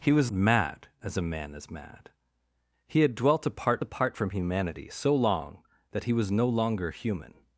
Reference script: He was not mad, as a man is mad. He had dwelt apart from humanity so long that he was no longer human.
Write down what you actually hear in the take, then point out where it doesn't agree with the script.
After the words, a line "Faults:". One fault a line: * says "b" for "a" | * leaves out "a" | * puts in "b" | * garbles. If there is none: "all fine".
He was mad, as a man is mad. He had dwelt apart apart from humanity so long that he was no longer human.
Faults:
* leaves out "not"
* puts in "apart"